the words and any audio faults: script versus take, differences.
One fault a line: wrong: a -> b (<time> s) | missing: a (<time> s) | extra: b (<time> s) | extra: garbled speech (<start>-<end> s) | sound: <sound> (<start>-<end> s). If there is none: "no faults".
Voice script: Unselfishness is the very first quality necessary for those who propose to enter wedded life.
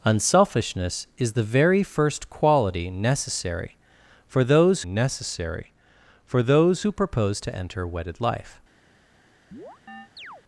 extra: necessary for those (4.8 s)
sound: chirp (9.5-10.4 s)